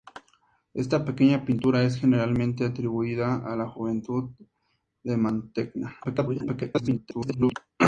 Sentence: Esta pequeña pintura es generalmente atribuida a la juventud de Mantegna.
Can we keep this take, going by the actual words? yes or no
no